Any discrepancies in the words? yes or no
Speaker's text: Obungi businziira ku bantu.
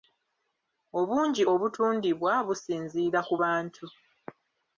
yes